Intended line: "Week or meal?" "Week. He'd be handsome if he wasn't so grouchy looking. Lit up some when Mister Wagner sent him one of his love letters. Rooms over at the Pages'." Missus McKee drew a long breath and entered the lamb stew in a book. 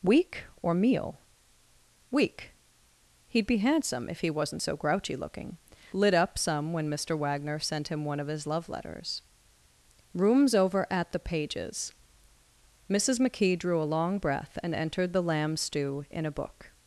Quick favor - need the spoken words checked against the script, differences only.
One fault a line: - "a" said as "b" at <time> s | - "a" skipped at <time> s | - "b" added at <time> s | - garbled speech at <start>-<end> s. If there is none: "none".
none